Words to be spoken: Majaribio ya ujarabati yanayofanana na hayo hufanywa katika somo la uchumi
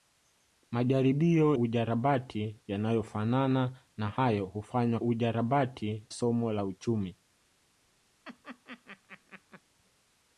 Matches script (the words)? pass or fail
fail